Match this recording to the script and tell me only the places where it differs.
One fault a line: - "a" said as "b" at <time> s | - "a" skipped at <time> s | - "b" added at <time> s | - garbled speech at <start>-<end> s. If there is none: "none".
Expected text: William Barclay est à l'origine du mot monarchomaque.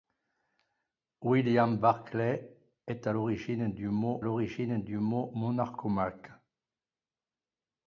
- "l'origine du mot" added at 4.2 s